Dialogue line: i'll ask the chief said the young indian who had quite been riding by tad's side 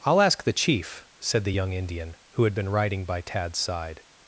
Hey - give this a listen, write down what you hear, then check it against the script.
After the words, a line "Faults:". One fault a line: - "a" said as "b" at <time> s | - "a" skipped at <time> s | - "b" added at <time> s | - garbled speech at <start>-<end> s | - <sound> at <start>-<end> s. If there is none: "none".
i'll ask the chief said the young indian who had been riding by tad's side
Faults:
- "quite" skipped at 2.5 s